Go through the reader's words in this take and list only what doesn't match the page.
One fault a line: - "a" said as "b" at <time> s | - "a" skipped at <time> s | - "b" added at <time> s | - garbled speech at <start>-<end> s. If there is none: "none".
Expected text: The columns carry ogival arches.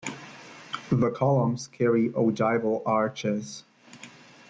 none